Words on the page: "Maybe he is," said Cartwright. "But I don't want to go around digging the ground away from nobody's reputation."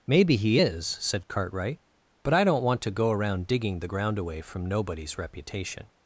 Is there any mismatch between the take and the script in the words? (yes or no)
no